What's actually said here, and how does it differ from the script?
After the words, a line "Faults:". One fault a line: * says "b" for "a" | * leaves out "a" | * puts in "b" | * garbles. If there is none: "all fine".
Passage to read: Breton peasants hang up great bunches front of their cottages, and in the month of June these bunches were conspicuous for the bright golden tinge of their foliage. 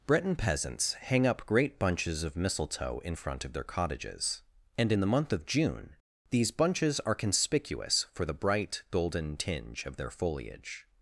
Breton peasants hang up great bunches of mistletoe in front of their cottages, and in the month of June these bunches are conspicuous for the bright golden tinge of their foliage.
Faults:
* puts in "of mistletoe in"
* says "are" for "were"